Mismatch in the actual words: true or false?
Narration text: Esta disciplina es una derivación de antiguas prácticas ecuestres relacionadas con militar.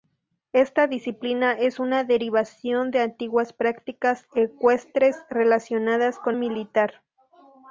false